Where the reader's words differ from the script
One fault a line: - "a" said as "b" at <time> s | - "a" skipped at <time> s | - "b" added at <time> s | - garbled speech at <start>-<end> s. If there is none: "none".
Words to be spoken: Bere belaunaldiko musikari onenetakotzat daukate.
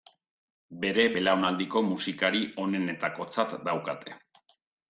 none